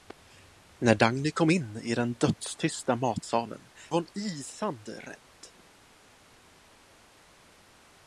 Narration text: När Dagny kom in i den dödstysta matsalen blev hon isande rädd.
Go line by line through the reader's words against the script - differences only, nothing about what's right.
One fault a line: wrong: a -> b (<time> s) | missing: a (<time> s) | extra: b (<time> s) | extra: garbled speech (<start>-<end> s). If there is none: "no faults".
missing: blev (3.7 s)